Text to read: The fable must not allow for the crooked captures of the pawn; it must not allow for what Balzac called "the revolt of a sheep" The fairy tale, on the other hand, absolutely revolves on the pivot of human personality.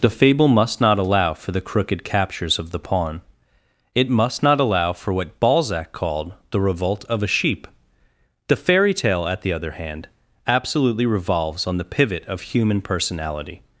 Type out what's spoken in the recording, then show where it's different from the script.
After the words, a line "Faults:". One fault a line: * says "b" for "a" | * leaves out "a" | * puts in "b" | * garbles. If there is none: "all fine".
The fable must not allow for the crooked captures of the pawn; it must not allow for what Balzac called "the revolt of a sheep" The fairy tale, at the other hand, absolutely revolves on the pivot of human personality.
Faults:
* says "at" for "on"